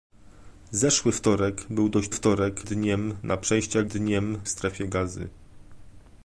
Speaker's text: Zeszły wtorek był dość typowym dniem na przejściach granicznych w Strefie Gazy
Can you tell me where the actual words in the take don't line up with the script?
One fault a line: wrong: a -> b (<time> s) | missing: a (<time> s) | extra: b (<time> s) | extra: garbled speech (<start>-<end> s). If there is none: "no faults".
wrong: typowym -> wtorek (2.1 s)
wrong: granicznych -> dniem (3.8 s)